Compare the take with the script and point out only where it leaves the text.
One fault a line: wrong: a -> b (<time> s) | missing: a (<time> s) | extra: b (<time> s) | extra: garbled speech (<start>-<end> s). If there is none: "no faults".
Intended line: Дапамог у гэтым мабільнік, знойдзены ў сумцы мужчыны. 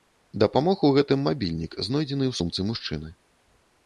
no faults